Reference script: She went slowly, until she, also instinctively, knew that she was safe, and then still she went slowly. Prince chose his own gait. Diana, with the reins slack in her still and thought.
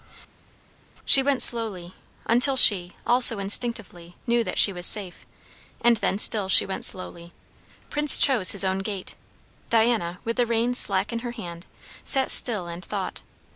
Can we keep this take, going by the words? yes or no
no